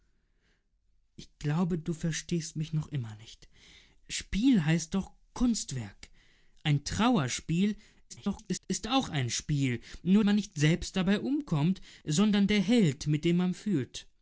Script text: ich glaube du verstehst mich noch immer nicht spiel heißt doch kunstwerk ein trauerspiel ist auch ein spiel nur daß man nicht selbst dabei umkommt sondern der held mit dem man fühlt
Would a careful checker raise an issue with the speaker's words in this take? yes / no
yes